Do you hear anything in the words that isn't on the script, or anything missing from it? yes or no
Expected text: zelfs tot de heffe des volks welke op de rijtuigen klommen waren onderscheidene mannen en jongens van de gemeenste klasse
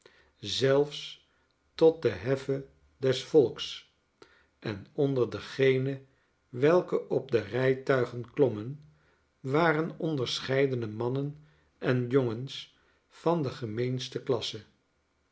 yes